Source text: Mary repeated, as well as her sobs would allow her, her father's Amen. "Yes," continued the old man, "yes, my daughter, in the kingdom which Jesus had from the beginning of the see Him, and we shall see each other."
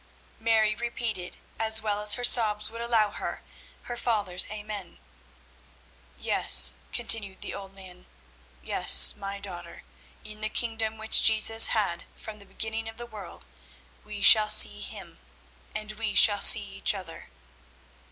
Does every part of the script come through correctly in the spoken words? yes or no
no